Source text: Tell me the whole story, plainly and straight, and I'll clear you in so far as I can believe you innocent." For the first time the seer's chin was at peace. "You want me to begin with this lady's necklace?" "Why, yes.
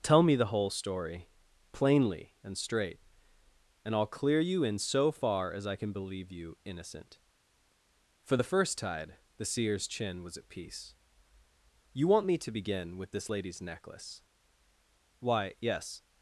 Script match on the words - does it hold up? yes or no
no